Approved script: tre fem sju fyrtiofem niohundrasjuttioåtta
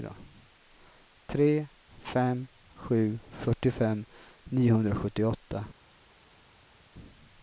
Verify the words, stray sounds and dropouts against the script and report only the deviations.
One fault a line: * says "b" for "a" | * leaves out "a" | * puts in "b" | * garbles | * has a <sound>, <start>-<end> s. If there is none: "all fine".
all fine